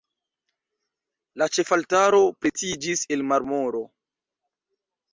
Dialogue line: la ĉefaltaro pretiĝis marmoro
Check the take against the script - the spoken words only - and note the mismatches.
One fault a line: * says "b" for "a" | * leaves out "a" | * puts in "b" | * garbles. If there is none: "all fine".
* puts in "el"